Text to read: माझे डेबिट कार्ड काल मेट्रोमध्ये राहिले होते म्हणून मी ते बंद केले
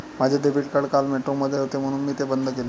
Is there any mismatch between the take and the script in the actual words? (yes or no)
yes